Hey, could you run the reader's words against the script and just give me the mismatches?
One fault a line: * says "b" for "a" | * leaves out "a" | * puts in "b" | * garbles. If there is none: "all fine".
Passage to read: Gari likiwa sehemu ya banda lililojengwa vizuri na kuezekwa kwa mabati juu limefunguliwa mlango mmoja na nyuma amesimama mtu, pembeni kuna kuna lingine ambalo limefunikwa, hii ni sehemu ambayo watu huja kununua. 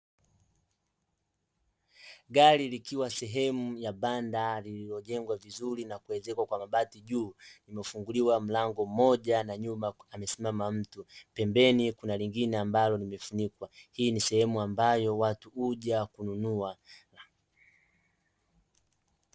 * leaves out "kuna"